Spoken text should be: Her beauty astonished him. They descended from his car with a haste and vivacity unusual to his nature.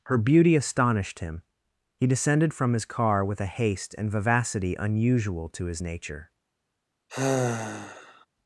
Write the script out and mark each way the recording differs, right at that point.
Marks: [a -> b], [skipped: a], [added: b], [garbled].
Her beauty astonished him. [They -> He] descended from his car with a haste and vivacity unusual to his nature.